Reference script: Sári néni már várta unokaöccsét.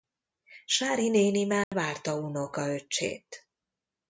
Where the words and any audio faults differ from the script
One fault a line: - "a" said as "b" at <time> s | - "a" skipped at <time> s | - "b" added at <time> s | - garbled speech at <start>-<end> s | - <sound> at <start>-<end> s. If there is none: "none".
- dropout at 1.6-1.7 s